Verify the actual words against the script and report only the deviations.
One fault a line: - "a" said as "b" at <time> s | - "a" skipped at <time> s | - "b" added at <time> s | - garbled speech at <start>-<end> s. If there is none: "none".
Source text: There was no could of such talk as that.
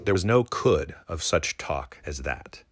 none